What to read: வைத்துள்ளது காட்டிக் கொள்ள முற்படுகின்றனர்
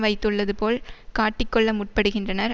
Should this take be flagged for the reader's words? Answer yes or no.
yes